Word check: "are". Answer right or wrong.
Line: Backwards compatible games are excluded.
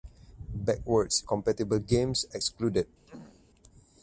wrong